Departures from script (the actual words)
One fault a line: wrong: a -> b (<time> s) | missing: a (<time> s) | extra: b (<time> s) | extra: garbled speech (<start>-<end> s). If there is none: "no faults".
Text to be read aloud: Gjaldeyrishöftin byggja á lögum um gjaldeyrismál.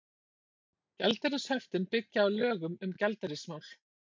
no faults